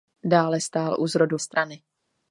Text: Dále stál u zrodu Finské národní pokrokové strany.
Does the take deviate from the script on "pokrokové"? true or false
true